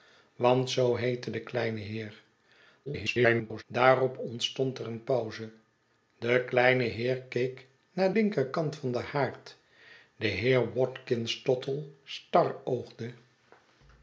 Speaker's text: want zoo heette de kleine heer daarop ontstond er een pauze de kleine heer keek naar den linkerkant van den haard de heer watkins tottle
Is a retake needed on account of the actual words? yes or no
yes